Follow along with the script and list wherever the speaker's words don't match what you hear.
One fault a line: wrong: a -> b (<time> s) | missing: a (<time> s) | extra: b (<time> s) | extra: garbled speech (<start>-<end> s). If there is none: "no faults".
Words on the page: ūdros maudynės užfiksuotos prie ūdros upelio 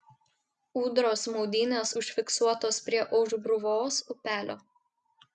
wrong: ūdros -> aušbruvos (3.2 s)